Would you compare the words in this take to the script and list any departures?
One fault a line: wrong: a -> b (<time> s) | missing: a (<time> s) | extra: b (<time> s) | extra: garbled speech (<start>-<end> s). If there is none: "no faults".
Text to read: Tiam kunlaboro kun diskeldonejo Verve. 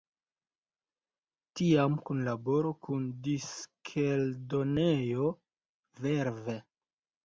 no faults